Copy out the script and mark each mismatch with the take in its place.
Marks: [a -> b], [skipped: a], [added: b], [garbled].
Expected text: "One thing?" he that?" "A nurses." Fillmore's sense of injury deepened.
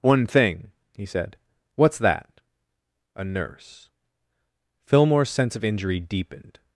"One thing?" he [added: said What's] that?" "A [nurses." -> nurse] Fillmore's sense of injury deepened.